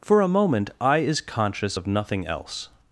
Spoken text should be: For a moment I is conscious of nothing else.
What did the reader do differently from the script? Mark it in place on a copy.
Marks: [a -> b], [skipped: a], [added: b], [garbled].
For a moment I is conscious of nothing else.